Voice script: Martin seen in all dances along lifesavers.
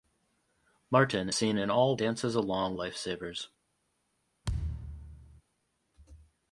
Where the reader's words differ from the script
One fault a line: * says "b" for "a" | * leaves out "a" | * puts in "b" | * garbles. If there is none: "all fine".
all fine